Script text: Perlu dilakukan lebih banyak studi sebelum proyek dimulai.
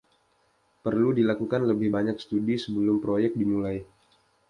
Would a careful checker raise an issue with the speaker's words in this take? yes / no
no